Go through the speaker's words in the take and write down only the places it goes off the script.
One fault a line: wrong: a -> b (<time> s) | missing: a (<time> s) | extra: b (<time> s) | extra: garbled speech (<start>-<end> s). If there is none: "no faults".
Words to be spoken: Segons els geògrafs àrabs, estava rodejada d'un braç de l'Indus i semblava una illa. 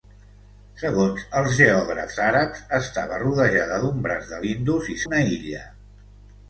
missing: semblava (5.0 s)